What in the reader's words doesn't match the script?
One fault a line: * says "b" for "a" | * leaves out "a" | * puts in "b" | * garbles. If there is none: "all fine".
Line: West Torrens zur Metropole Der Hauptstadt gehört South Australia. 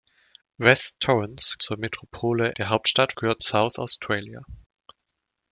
all fine